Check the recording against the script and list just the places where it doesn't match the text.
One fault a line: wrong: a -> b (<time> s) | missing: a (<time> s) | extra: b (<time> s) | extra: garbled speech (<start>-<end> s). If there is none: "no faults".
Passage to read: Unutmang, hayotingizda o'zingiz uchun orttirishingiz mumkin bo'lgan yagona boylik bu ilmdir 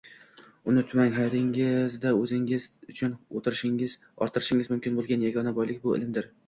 no faults